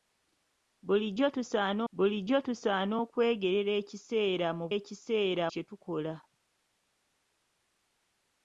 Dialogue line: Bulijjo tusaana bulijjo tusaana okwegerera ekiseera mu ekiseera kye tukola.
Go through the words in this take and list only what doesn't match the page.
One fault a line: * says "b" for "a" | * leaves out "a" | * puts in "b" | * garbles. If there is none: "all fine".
all fine